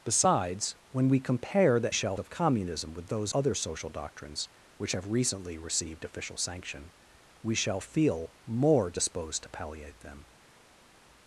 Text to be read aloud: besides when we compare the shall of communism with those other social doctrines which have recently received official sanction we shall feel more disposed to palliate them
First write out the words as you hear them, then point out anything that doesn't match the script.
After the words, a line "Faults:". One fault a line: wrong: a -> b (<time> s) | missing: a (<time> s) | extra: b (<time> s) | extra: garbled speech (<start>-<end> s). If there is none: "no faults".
besides when we compare the shall of communism with those other social doctrines which have recently received official sanction we shall feel more disposed to palliate them
Faults:
no faults